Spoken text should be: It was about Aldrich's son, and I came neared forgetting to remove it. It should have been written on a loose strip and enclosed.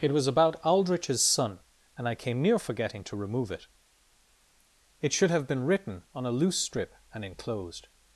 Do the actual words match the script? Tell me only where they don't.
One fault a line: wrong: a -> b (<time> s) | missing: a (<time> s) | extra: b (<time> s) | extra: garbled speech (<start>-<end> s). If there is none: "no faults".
wrong: neared -> near (2.4 s)